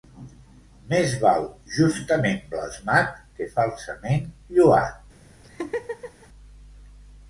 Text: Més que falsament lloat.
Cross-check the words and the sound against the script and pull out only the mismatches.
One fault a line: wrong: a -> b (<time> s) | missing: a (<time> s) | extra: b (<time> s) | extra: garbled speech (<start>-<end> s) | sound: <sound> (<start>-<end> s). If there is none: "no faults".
extra: val justament blasmat (1.2 s)
sound: laugh (5.4-6.3 s)